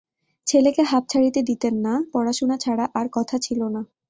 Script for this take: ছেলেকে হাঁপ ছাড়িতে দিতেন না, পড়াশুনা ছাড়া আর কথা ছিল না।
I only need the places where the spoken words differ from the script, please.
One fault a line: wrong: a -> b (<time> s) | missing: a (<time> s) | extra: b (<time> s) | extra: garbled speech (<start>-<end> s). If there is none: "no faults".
no faults